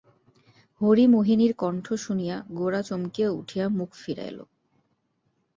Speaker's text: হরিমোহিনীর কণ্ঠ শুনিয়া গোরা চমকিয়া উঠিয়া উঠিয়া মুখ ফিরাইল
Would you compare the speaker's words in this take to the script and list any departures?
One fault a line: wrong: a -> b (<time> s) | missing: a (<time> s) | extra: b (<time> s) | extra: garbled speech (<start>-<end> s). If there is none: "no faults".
missing: উঠিয়া (3.6 s)